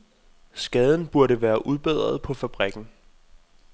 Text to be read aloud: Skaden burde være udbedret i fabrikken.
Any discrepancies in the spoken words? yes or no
yes